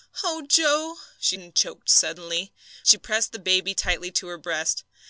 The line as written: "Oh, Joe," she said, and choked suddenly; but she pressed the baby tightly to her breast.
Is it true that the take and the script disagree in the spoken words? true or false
true